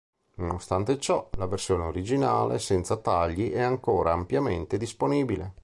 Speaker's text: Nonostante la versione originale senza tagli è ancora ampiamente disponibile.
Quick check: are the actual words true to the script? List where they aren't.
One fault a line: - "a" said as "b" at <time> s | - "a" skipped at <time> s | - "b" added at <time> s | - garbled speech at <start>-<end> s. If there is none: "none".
- "ciò" added at 1.0 s